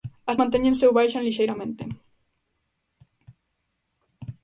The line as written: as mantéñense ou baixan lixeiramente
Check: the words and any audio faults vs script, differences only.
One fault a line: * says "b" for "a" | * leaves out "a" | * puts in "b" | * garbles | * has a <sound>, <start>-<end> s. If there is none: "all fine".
all fine